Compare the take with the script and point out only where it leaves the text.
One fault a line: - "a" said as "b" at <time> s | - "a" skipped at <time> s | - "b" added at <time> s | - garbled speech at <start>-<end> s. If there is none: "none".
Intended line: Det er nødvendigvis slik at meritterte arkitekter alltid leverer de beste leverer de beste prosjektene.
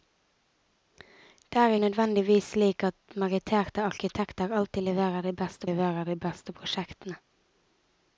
none